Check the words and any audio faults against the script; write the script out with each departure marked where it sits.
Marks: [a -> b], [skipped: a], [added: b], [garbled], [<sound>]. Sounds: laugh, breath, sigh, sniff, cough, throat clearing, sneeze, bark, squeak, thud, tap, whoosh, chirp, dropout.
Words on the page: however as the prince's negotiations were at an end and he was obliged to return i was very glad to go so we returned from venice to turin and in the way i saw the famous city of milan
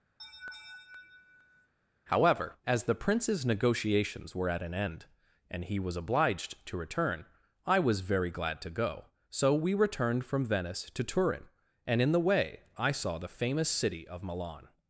[laugh] however as the prince's negotiations were at an end and he was obliged to return i was very glad to go so we returned from venice to turin and in the way i saw the famous city of milan